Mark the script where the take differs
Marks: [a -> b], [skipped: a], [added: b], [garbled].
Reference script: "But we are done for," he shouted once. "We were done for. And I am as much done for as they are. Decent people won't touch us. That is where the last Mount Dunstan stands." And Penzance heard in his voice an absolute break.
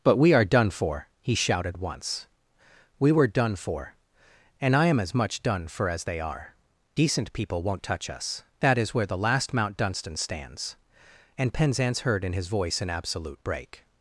"But we are done for," he shouted once. "We were done for. And I am as much done for as they are. Decent people won't touch us. That is where the last Mount Dunstan stands." And Penzance heard in his voice an absolute break.